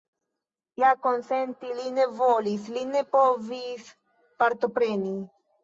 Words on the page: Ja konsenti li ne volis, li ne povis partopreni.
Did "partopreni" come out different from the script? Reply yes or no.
no